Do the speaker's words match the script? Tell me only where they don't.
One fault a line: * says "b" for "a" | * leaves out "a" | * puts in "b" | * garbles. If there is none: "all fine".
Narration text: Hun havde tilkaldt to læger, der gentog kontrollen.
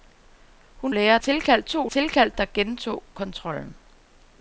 * says "læger" for "havde"
* says "tilkaldt" for "læger"